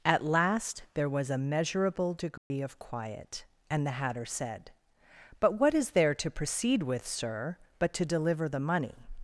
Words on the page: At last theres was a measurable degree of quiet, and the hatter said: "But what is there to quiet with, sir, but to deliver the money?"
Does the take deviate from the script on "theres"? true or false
true